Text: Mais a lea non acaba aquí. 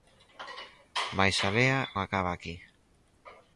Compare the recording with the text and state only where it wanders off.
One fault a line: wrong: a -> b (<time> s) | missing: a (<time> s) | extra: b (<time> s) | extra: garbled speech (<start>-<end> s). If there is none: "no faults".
missing: non (1.8 s)